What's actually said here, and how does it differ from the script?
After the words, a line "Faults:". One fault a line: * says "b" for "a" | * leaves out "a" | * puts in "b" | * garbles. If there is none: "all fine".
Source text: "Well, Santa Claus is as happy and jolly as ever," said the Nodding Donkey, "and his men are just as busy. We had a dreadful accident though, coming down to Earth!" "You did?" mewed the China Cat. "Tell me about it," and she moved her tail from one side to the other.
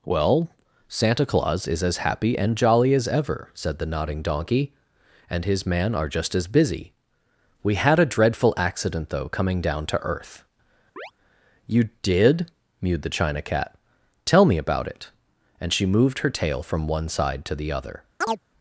"Well, Santa Claus is as happy and jolly as ever," said the Nodding Donkey, "and his man are just as busy. We had a dreadful accident though, coming down to Earth!" "You did?" mewed the China Cat. "Tell me about it," and she moved her tail from one side to the other.
Faults:
* says "man" for "men"